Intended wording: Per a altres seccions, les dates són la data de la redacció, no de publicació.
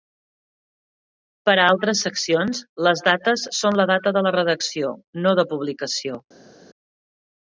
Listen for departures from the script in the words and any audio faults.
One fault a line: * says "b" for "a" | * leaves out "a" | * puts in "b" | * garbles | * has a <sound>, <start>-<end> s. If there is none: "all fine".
all fine